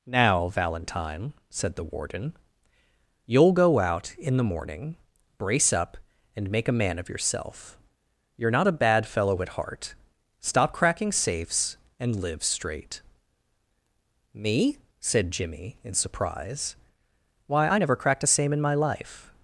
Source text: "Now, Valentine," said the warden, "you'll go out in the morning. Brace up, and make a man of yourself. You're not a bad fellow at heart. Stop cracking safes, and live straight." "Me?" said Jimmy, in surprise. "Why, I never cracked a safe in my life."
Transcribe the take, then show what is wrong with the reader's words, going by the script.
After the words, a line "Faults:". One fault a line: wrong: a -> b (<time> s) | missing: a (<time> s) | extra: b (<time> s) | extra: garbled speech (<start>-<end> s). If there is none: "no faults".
"Now, Valentine," said the warden, "you'll go out in the morning. Brace up, and make a man of yourself. You're not a bad fellow at heart. Stop cracking safes, and live straight." "Me?" said Jimmy, in surprise. "Why, I never cracked a same in my life."
Faults:
wrong: safe -> same (18.3 s)